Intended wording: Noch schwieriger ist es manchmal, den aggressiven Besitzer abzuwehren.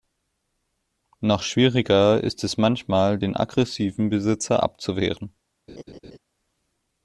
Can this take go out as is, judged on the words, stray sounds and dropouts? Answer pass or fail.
fail